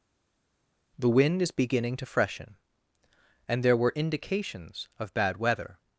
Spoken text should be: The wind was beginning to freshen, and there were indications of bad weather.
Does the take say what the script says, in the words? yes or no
no